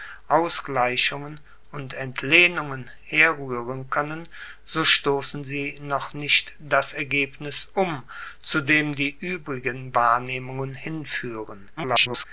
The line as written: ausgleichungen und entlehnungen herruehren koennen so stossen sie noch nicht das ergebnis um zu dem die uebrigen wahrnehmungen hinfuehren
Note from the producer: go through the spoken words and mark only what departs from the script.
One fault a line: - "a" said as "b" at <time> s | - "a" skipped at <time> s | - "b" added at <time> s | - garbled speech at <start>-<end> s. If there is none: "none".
- garbled speech at 11.8-12.2 s